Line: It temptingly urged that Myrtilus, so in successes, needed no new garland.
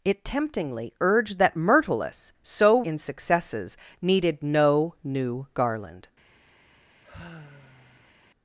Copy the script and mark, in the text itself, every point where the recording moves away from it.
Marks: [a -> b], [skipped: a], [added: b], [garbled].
It temptingly urged that Myrtilus, so in successes, needed no new garland.